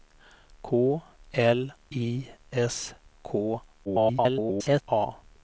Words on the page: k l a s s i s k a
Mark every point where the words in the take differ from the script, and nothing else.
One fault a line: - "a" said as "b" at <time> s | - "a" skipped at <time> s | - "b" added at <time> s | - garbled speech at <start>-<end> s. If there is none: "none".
- "a s s" skipped at 1.7 s
- garbled speech at 3.8-4.8 s